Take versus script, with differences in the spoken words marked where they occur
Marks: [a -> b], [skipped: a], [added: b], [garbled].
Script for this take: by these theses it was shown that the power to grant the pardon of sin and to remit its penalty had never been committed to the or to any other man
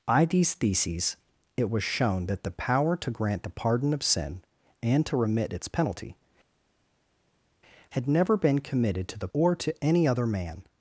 by these theses it was shown that the power to grant the pardon of sin and to remit its penalty had never been committed to the or to any other man